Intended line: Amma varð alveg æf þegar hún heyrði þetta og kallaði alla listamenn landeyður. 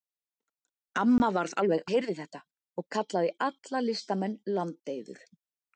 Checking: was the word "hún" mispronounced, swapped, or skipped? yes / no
yes